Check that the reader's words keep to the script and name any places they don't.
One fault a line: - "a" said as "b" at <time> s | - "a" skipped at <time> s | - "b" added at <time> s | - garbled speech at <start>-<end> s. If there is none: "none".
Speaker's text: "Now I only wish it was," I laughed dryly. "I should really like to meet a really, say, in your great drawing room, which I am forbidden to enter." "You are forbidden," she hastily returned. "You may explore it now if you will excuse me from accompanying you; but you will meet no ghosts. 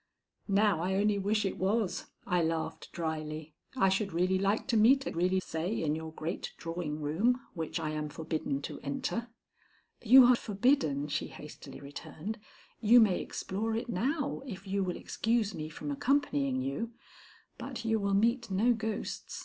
none